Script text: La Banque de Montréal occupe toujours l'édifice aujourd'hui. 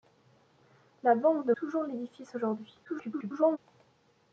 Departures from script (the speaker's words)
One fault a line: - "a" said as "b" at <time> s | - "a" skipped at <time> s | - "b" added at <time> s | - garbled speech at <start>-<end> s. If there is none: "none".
- "Montréal occupe" skipped at 1.5 s
- garbled speech at 2.9-3.6 s